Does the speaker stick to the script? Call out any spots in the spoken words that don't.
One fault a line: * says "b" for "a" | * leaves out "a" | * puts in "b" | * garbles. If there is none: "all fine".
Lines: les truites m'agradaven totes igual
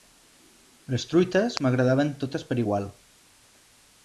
* puts in "per"